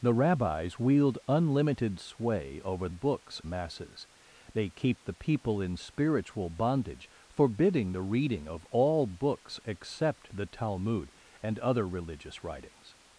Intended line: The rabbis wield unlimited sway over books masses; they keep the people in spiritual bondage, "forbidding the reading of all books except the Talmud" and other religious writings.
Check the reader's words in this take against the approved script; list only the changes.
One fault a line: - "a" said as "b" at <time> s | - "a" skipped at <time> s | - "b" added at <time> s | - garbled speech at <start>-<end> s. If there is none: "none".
none